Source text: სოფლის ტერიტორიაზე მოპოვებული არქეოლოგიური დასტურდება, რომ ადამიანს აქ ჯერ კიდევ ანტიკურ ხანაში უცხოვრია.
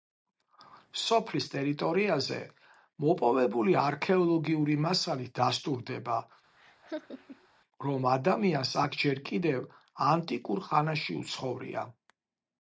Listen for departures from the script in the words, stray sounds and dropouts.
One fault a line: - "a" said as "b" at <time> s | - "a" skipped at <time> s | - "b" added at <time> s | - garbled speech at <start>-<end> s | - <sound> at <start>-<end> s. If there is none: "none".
- "მასალით" added at 4.9 s
- laugh at 6.6-7.5 s